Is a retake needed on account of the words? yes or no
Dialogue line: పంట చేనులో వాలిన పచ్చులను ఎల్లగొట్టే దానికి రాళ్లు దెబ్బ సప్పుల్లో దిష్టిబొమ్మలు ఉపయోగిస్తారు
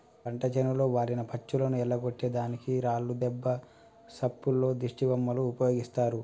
no